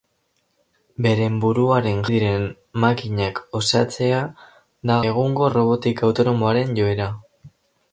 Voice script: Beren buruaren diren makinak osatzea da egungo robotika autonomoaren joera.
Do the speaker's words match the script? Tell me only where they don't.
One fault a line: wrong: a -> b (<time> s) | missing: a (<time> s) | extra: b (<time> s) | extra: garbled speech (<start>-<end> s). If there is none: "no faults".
no faults